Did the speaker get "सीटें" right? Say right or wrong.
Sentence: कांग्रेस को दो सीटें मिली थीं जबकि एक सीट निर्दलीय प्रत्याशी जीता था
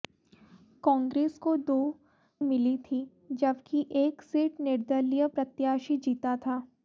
wrong